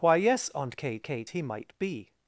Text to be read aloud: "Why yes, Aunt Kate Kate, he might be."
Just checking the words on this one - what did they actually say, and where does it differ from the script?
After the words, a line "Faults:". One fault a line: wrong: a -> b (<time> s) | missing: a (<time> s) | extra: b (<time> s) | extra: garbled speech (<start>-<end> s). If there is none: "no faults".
"Why yes, Aunt Kate Kate, he might be."
Faults:
no faults